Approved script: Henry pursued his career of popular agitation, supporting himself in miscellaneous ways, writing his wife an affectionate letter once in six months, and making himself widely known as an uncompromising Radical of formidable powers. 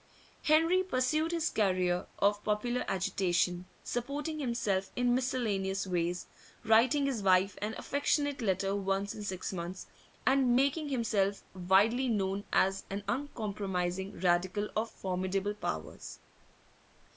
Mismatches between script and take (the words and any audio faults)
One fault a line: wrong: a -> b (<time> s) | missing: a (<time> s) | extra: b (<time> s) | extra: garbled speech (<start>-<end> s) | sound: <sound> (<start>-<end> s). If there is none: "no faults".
no faults